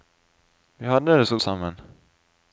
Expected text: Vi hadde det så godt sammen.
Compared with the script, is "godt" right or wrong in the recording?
wrong